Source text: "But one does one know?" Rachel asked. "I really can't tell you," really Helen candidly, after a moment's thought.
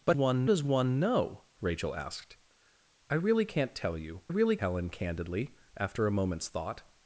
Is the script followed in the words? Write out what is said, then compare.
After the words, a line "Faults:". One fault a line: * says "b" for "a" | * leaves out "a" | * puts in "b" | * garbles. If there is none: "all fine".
"But one does one know?" Rachel asked. "I really can't tell you," really Helen candidly, after a moment's thought.
Faults:
all fine